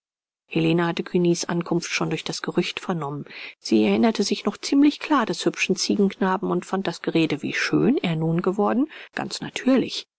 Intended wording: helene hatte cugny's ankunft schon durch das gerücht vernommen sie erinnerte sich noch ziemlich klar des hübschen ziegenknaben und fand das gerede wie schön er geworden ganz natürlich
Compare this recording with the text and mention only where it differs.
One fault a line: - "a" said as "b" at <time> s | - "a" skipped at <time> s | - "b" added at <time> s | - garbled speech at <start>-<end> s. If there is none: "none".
- "nun" added at 8.1 s